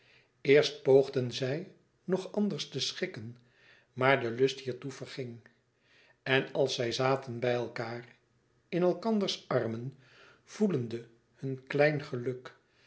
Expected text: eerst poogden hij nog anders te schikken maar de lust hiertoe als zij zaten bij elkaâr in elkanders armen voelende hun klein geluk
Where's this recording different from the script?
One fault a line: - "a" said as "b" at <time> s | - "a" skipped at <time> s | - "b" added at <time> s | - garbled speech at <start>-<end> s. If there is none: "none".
- "hij" said as "zij" at 1.3 s
- "verging en" added at 4.9 s